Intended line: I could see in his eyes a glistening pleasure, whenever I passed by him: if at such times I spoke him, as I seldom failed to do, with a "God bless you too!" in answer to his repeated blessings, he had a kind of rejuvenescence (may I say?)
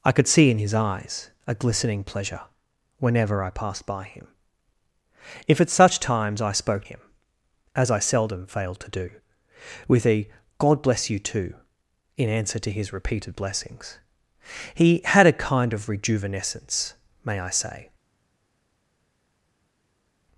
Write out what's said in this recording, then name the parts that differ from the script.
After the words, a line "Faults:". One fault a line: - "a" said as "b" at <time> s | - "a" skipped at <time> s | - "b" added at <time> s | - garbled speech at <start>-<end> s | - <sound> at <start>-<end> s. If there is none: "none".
I could see in his eyes a glistening pleasure, whenever I passed by him: if at such times I spoke him, as I seldom failed to do, with a "God bless you too!" in answer to his repeated blessings, he had a kind of rejuvenescence (may I say?)
Faults:
none